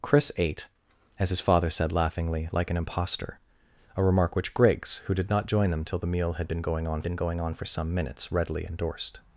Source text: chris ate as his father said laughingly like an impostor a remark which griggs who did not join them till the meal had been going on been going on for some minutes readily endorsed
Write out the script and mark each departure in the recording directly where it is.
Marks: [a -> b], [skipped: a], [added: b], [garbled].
chris ate as his father said laughingly like an impostor a remark which griggs who did not join them till the meal had been going on been going on for some minutes readily endorsed